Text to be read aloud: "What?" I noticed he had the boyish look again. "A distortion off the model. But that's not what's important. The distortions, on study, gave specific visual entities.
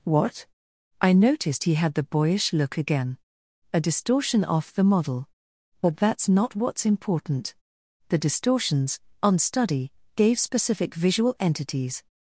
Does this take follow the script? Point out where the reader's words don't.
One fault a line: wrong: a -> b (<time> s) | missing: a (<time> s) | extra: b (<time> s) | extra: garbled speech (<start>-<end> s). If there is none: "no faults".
no faults